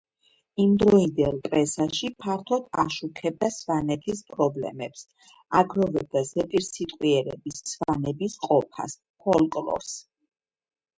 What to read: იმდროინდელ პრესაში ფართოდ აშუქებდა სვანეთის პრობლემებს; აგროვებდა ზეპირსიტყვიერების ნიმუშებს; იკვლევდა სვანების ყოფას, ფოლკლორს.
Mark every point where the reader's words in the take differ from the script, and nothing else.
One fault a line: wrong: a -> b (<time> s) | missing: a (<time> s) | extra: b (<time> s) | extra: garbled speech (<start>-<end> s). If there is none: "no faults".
missing: ნიმუშებს იკვლევდა (7.6 s)